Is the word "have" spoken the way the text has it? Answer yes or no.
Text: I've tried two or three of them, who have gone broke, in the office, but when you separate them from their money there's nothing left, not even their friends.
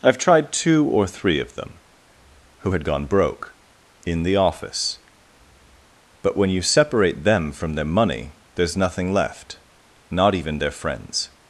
no